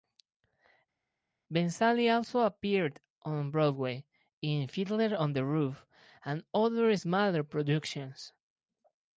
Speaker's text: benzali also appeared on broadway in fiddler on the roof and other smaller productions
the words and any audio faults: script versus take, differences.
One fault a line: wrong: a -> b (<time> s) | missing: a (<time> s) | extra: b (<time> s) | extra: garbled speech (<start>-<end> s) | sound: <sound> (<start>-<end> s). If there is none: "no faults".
no faults